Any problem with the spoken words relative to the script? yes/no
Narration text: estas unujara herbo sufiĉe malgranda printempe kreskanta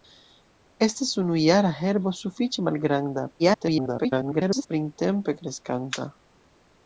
yes